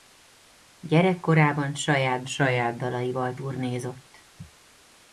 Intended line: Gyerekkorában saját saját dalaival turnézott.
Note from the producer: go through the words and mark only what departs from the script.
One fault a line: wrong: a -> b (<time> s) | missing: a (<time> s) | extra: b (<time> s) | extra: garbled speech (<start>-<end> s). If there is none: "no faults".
no faults